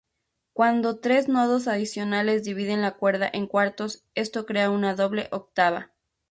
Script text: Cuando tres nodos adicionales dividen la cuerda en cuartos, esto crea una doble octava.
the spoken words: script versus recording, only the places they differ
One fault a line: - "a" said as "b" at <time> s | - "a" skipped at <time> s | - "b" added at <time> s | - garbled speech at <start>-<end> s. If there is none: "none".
none